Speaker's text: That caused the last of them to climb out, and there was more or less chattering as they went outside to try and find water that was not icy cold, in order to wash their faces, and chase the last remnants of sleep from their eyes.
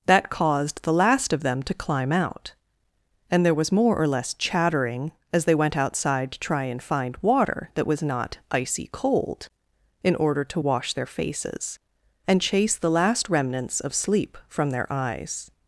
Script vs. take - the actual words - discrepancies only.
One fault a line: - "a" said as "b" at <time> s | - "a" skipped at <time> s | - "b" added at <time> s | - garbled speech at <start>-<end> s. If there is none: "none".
none